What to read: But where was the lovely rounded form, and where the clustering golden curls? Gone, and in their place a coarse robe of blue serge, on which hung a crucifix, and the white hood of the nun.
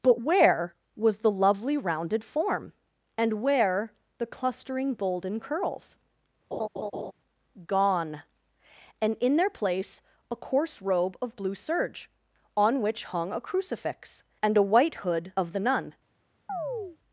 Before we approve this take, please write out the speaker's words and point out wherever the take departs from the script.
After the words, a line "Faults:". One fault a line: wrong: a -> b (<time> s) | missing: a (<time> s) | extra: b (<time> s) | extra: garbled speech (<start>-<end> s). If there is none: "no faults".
But where was the lovely rounded form, and where the clustering golden curls? Gone, and in their place a coarse robe of blue serge, on which hung a crucifix, and a white hood of the nun.
Faults:
wrong: the -> a (14.6 s)